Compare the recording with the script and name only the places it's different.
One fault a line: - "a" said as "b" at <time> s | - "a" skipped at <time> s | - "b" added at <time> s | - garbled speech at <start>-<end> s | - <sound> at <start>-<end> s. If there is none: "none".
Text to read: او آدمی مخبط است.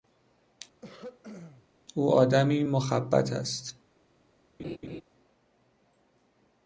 - throat clearing at 0.8-1.7 s
- laugh at 4.6-5.0 s